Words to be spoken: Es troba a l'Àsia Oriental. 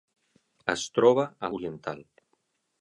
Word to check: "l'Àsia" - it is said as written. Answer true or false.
false